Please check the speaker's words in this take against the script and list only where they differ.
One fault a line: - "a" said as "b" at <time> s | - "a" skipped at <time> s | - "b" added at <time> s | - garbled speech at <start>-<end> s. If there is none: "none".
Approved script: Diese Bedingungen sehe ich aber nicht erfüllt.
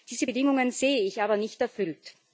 none